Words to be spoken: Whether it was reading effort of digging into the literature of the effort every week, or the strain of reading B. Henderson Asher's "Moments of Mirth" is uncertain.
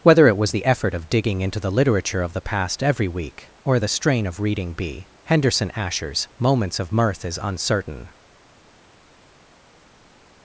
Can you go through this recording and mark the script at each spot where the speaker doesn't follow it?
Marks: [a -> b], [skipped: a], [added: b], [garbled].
Whether it was [reading -> the] effort of digging into the literature of the [effort -> past] every week, or the strain of reading B. Henderson Asher's "Moments of Mirth" is uncertain.